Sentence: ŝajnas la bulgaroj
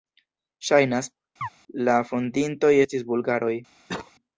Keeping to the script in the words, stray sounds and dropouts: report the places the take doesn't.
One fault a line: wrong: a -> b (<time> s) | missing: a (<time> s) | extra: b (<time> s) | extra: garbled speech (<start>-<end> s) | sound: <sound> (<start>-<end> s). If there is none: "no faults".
sound: chirp (1.4-1.5 s)
extra: fondintoj estis (2.1 s)
sound: cough (3.9-4.1 s)